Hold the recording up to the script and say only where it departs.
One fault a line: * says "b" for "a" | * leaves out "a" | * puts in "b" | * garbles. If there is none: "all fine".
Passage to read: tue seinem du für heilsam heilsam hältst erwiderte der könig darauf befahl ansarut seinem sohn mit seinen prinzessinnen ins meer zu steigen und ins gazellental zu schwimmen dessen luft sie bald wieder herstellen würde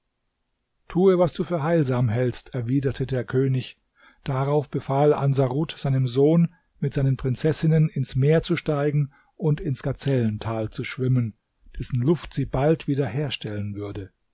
* says "was" for "seinem"
* leaves out "heilsam"